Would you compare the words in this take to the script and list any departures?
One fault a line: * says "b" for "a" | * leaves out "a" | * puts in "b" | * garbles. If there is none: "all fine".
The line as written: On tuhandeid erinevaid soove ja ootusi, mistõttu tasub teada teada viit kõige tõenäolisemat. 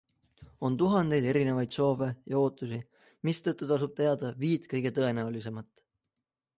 * leaves out "teada"